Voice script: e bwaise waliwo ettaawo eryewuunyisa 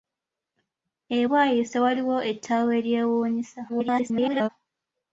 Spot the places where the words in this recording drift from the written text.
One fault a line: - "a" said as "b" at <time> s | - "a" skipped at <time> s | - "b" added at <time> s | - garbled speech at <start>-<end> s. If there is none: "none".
- garbled speech at 3.7-4.5 s